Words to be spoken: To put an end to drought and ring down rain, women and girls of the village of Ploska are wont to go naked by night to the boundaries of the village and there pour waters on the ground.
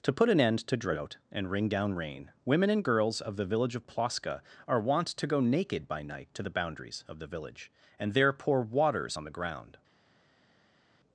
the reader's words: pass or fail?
pass